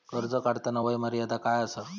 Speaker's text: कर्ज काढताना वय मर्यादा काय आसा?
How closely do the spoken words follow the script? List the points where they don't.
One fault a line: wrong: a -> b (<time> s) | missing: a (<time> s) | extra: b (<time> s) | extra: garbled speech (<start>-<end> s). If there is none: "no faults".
no faults